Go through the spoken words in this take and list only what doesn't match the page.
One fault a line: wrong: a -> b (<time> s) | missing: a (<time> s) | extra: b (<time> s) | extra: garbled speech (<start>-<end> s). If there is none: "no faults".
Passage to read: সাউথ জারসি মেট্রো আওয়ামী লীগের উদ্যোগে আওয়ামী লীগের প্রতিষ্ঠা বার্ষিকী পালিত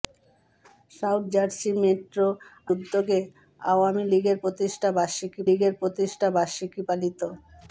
extra: উদ্যোগে (2.7 s)
wrong: উদ্যোগে আওয়ামী -> প্রতিষ্ঠা বার্ষিকী (4.4 s)